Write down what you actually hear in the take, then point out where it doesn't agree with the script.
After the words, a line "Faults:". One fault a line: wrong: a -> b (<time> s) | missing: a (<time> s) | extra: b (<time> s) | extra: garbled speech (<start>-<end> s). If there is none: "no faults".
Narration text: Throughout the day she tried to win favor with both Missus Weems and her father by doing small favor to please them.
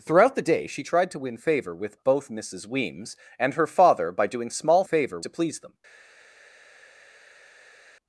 Throughout the day she tried to win favor with both Missus Weems and her father by doing small favor to please them.
Faults:
no faults